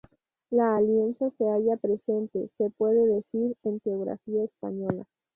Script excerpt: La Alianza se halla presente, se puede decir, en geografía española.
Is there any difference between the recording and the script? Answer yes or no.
no